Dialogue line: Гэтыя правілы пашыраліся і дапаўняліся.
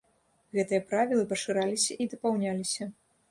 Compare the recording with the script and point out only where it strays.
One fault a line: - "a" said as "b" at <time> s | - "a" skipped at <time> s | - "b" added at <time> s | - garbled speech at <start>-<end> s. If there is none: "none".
none